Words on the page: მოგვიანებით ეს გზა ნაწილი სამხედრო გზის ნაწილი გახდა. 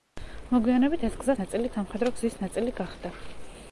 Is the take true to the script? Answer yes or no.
yes